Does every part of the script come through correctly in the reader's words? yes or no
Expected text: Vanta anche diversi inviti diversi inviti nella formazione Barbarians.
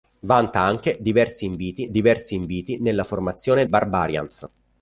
yes